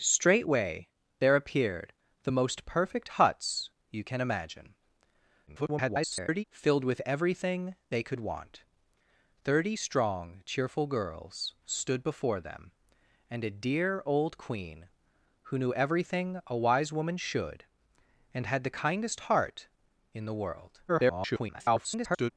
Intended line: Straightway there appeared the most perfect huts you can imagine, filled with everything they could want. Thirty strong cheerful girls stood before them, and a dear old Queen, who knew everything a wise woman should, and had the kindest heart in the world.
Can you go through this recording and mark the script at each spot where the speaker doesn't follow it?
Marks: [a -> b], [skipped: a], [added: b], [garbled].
Straightway there appeared the most perfect huts you can imagine, [garbled] filled with everything they could want. Thirty strong cheerful girls stood before them, and a dear old Queen, who knew everything a wise woman should, and had the kindest heart in the world. [garbled]